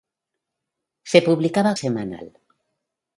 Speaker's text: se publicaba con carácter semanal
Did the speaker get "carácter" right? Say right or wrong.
wrong